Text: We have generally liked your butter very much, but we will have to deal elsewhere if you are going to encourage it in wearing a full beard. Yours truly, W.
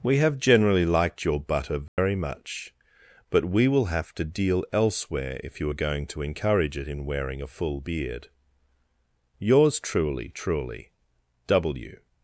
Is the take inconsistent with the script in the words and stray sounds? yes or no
yes